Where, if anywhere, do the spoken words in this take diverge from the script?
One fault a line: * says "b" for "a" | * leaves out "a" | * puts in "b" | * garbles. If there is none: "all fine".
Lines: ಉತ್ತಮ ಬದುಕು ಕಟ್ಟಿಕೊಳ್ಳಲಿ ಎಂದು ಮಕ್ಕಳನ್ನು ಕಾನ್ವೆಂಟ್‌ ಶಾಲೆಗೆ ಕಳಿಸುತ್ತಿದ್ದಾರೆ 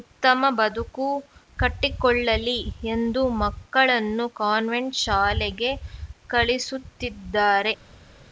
all fine